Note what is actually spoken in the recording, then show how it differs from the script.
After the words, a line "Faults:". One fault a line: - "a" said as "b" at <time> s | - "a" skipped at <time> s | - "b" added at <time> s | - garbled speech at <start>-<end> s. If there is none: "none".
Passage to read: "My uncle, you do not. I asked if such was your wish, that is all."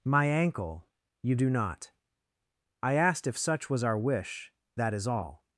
"My ankle, you do not. I asked if such was our wish, that is all."
Faults:
- "uncle" said as "ankle" at 0.2 s
- "your" said as "our" at 3.8 s